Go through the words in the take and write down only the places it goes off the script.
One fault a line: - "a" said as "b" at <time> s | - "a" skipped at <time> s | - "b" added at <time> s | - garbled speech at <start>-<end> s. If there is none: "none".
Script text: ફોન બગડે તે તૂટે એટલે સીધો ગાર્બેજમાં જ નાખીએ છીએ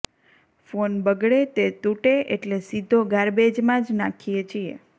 none